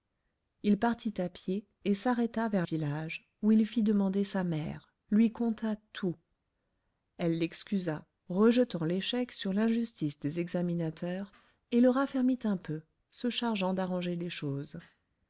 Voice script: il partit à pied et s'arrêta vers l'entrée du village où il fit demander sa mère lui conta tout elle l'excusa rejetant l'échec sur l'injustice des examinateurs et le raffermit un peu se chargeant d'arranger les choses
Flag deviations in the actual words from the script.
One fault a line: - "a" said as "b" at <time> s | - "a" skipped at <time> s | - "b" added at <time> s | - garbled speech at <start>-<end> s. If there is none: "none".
- "l'entrée du" skipped at 2.6 s